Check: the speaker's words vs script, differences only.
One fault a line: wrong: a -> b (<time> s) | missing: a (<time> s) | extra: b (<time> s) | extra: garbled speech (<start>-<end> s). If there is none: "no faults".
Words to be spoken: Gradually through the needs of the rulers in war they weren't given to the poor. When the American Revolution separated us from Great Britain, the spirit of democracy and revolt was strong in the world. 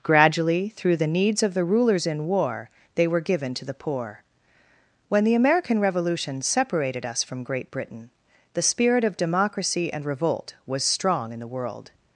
wrong: weren't -> were (3.1 s)